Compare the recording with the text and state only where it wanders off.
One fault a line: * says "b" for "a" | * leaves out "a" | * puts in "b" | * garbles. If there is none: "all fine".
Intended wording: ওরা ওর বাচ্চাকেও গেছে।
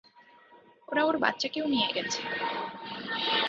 * puts in "নিয়ে"